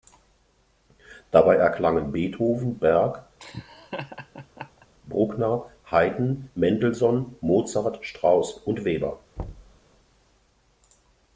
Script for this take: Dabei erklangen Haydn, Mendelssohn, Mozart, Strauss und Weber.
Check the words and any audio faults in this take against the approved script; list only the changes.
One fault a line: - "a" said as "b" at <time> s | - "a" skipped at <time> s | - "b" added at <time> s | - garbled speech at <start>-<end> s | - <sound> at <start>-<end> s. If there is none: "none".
- "Beethoven Berg Bruckner" added at 2.1 s
- laugh at 3.4-4.9 s
- thud at 9.4-9.8 s